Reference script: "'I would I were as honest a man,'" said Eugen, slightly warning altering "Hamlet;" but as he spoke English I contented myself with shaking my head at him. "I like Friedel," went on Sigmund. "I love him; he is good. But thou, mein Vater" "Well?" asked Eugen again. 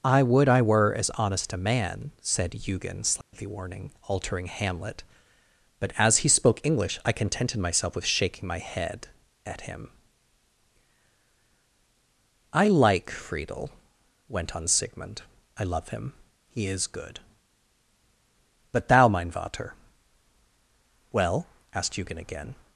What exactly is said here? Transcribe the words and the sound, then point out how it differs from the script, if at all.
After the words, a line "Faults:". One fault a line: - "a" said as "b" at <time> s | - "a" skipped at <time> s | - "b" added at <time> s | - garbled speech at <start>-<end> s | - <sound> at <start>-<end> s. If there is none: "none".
"'I would I were as honest a man,'" said Eugen, slightly warning altering "Hamlet;" but as he spoke English I contented myself with shaking my head at him. "I like Friedel," went on Sigmund. "I love him; he is good. But thou, mein Vater" "Well?" asked Eugen again.
Faults:
- dropout at 3.2-3.3 s